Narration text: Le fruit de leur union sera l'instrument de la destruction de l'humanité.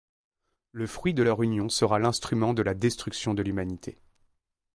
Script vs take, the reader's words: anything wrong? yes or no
no